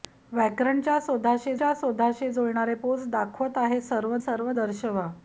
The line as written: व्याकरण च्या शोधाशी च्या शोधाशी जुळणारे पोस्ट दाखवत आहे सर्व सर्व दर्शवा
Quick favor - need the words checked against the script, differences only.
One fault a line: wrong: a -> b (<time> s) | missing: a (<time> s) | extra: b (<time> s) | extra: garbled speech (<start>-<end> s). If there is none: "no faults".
no faults